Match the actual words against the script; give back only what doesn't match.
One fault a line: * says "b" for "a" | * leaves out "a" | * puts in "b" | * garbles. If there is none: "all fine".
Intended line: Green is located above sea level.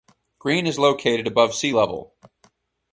all fine